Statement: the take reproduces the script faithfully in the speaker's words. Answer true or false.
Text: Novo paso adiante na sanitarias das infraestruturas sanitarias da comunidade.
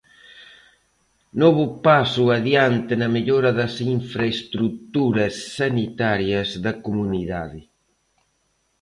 false